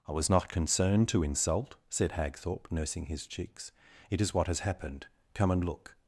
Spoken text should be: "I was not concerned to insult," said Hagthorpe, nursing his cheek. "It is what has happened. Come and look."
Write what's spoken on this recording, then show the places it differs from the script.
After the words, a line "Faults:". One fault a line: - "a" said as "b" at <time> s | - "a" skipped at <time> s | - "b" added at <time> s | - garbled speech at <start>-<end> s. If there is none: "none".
"I was not concerned to insult," said Hagthorpe, nursing his cheeks. "It is what has happened. Come and look."
Faults:
- "cheek" said as "cheeks" at 3.3 s